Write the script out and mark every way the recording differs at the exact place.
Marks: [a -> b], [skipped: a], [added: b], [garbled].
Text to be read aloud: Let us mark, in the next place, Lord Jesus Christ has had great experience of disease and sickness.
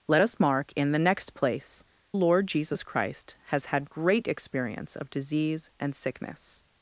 Let us mark, in the next place, Lord Jesus Christ has had great experience of disease and sickness.